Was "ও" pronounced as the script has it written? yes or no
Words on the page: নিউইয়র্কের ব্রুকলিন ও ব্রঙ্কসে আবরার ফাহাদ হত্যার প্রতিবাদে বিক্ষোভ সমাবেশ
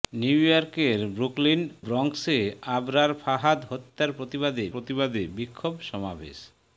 no